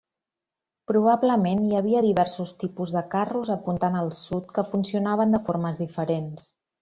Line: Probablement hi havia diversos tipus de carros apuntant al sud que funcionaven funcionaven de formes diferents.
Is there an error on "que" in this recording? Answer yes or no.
no